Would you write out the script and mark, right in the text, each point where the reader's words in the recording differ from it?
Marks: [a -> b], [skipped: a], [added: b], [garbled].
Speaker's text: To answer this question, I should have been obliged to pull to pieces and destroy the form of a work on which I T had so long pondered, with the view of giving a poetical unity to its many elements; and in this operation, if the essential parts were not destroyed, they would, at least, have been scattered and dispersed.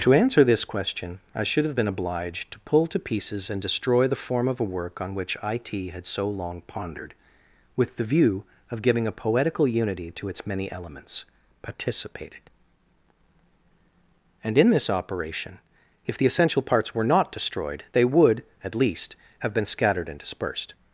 To answer this question, I should have been obliged to pull to pieces and destroy the form of a work on which I T had so long pondered, with the view of giving a poetical unity to its many elements; [added: participated] and in this operation, if the essential parts were not destroyed, they would, at least, have been scattered and dispersed.